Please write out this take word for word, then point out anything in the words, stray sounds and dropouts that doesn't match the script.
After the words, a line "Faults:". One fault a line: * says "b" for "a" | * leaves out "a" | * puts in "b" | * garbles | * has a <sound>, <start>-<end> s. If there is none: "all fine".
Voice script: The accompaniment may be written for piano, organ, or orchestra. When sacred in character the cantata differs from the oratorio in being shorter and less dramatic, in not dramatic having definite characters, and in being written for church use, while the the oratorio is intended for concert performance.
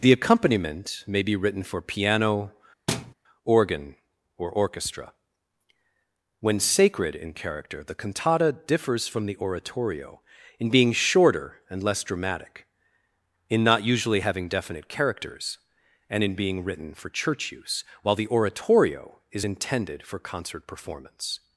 The accompaniment may be written for piano, organ, or orchestra. When sacred in character the cantata differs from the oratorio in being shorter and less dramatic, in not usually having definite characters, and in being written for church use, while the oratorio is intended for concert performance.
Faults:
* has a thud, 2.9-3.1 s
* says "usually" for "dramatic"
* leaves out "the"